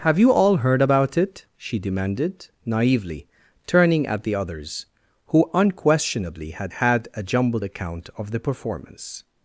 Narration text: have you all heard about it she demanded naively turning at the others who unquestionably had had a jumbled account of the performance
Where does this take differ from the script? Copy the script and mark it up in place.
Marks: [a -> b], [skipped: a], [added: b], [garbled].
have you all heard about it she demanded naively turning at the others who unquestionably had had a jumbled account of the performance